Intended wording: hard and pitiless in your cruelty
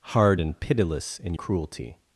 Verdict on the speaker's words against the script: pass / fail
fail